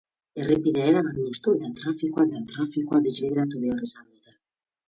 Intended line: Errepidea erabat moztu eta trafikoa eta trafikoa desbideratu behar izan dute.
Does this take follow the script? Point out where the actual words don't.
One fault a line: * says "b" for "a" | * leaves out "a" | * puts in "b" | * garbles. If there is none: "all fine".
all fine